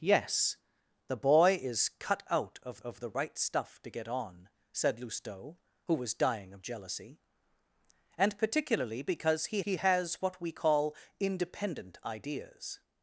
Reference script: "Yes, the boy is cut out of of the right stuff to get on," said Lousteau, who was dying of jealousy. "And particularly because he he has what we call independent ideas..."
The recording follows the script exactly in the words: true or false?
true